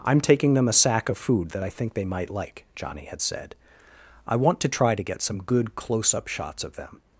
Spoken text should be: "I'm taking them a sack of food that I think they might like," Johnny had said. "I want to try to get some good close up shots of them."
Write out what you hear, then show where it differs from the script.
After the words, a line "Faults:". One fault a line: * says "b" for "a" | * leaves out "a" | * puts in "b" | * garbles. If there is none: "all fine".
"I'm taking them a sack of food that I think they might like," Johnny had said. "I want to try to get some good close up shots of them."
Faults:
all fine